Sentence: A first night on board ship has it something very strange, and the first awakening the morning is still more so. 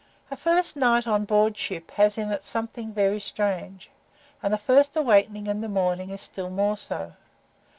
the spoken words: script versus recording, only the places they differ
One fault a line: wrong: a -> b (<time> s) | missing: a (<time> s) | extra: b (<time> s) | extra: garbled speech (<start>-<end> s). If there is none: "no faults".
extra: in (2.2 s)
extra: in (5.5 s)